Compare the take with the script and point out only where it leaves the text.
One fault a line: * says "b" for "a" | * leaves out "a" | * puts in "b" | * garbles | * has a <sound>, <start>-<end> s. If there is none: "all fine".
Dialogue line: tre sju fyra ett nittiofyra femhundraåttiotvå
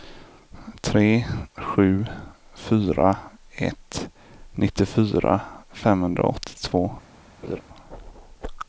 * has a laugh, 7.4-7.6 s